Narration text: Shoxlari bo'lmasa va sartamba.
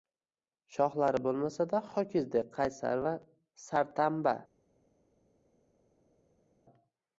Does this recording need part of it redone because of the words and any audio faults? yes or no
yes